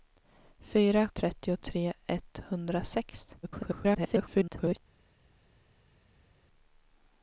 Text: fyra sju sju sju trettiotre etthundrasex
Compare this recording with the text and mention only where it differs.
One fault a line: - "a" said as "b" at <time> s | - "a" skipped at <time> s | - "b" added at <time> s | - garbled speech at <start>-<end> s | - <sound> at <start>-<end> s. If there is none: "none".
- "sju sju sju" skipped at 1.1 s
- garbled speech at 3.4-4.8 s